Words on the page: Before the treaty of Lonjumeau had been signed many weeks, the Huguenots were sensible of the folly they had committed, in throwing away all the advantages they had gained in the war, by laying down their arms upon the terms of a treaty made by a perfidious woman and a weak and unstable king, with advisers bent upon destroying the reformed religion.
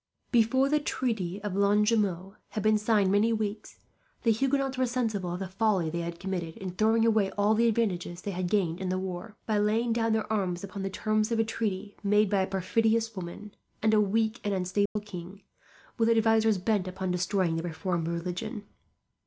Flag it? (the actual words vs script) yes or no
no